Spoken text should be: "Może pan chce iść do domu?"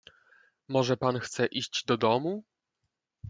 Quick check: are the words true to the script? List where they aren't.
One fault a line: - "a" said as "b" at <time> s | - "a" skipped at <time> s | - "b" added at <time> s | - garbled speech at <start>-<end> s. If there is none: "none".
none